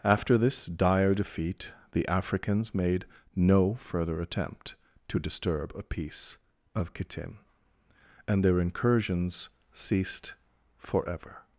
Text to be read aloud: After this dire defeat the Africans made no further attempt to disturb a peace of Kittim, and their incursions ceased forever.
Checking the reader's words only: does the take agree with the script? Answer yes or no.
yes